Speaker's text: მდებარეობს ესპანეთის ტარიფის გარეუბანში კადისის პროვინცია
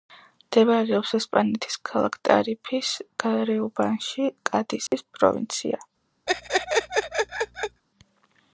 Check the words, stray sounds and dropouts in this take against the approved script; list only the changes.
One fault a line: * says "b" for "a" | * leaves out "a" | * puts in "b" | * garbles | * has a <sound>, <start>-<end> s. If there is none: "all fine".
* puts in "ქალაქ"
* has a dropout, 4.9-4.9 s
* has a laugh, 6.3-7.8 s